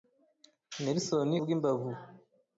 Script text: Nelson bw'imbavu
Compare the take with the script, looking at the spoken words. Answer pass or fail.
pass